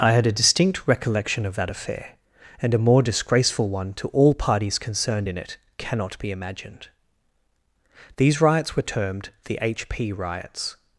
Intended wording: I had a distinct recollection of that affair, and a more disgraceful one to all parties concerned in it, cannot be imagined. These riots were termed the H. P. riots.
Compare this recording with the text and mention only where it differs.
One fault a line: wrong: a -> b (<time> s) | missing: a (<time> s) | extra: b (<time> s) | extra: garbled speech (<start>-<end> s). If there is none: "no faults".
no faults